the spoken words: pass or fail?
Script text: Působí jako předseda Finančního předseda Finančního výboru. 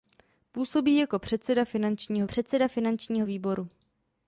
pass